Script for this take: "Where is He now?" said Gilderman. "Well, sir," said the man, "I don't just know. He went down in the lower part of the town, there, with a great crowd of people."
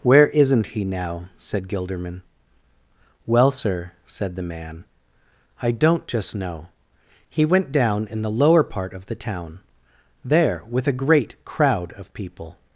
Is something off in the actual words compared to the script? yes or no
yes